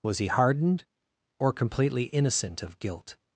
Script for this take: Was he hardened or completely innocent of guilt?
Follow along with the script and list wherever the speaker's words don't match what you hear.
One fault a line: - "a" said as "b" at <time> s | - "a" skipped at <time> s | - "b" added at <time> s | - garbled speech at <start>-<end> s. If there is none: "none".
none